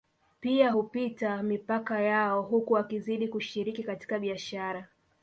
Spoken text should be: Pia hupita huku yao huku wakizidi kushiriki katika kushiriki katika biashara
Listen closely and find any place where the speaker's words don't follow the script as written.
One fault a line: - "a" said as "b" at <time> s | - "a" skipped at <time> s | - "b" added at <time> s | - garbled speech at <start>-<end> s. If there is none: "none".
- "huku" said as "mipaka" at 1.4 s
- "kushiriki katika" skipped at 4.2 s